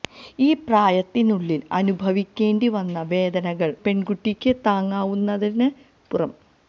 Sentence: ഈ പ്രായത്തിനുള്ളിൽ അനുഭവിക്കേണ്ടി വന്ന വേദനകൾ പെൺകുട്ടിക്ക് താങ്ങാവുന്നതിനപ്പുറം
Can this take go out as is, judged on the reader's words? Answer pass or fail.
pass